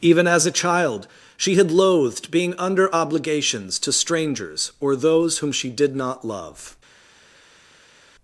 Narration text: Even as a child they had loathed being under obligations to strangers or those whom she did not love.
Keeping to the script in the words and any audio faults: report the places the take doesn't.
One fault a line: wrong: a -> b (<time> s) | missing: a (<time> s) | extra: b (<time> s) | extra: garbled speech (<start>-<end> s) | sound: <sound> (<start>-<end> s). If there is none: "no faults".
wrong: they -> she (1.4 s)